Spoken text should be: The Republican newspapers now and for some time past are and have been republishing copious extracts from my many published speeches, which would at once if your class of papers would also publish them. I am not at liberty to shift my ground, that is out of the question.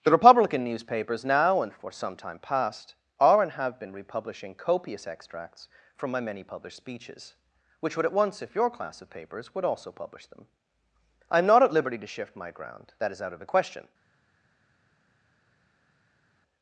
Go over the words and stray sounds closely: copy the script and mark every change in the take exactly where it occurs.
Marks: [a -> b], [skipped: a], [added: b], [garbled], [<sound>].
The Republican newspapers now and for some time past are and have been republishing copious extracts from my many published speeches, which would at once if your class of papers would also publish them. I am not at liberty to shift my ground, that is out of the question.